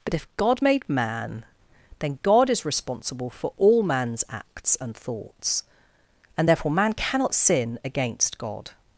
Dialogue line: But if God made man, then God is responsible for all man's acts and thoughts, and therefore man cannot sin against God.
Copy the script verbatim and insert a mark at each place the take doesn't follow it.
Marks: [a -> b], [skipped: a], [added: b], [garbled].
But if God made man, then God is responsible for all man's acts and thoughts, and therefore man cannot sin against God.